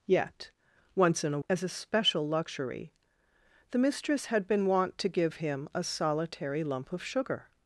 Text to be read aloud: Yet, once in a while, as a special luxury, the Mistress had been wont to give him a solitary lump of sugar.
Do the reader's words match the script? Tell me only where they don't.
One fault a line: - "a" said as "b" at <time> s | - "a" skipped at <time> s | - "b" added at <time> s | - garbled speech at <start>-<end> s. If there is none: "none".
- "while" skipped at 1.4 s